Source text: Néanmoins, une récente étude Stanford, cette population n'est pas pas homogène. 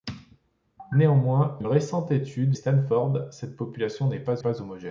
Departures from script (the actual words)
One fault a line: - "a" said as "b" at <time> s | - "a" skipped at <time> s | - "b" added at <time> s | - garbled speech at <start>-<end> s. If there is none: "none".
none